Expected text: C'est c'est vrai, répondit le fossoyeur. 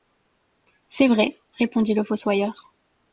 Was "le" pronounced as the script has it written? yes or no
yes